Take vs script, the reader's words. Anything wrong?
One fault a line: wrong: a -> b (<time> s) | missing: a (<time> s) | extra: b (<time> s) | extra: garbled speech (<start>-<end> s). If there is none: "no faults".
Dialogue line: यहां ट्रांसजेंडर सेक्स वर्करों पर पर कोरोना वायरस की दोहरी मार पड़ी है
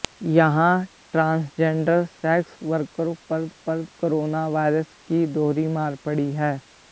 no faults